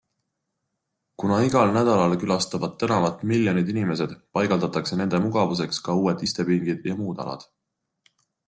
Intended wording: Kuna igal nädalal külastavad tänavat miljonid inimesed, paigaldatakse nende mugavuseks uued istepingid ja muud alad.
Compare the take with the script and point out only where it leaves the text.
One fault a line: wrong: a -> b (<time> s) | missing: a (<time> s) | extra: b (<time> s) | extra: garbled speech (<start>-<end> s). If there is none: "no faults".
extra: ka (5.9 s)